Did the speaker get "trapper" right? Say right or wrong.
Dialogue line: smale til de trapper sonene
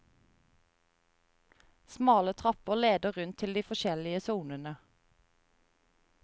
wrong